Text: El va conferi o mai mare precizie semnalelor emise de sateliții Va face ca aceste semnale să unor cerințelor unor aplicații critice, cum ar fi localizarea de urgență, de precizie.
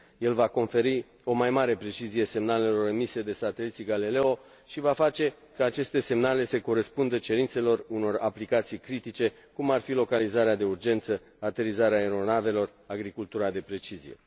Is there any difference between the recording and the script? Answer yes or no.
yes